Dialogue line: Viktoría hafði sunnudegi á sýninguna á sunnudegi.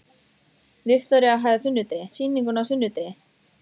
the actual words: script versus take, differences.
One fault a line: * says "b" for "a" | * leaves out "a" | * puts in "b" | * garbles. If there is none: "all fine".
all fine